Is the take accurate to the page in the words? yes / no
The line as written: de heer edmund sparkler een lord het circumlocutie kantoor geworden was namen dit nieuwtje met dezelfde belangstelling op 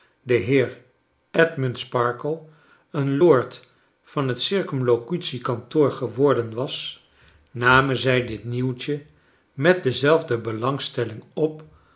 no